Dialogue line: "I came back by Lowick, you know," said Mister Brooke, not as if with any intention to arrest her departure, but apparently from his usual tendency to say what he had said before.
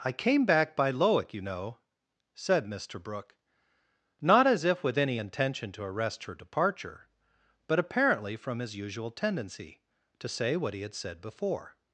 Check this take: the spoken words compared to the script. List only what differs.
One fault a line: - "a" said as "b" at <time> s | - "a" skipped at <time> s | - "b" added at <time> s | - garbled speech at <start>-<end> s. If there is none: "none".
none